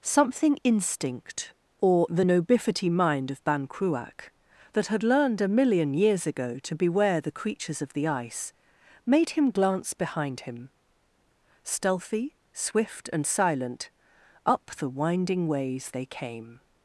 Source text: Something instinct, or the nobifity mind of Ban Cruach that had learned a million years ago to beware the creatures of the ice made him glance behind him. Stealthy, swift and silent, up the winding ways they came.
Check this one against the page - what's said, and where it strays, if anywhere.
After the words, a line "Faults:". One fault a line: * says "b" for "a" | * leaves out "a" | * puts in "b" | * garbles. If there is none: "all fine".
Something instinct, or the nobifity mind of Ban Cruach that had learned a million years ago to beware the creatures of the ice made him glance behind him. Stealthy, swift and silent, up the winding ways they came.
Faults:
all fine